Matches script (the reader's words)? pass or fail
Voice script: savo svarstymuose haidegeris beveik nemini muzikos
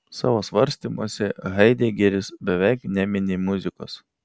pass